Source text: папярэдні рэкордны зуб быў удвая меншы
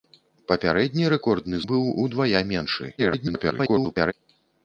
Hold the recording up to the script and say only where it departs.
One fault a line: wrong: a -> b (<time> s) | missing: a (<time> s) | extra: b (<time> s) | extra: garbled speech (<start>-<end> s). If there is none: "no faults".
missing: зуб (1.6 s)
extra: garbled speech (3.0-4.1 s)